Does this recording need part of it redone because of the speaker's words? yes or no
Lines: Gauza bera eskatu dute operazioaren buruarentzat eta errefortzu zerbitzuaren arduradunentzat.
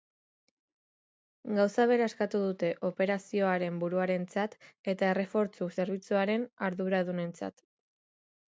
no